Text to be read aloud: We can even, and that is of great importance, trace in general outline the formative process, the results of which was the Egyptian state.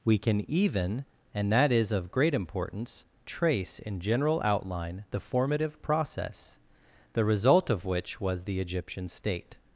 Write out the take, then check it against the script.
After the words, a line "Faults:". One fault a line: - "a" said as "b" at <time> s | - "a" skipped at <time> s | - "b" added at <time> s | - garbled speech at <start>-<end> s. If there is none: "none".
We can even, and that is of great importance, trace in general outline the formative process, the result of which was the Egyptian state.
Faults:
- "results" said as "result" at 7.2 s